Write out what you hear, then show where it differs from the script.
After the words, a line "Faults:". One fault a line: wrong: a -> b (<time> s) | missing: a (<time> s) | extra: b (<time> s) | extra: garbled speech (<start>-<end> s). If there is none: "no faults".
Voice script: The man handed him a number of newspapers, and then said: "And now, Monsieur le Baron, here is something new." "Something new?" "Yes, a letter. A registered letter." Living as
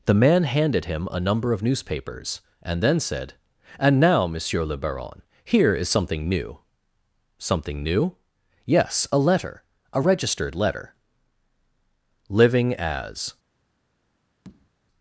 The man handed him a number of newspapers, and then said: "And now, Monsieur le Baron, here is something new." "Something new?" "Yes, a letter. A registered letter." Living as
Faults:
no faults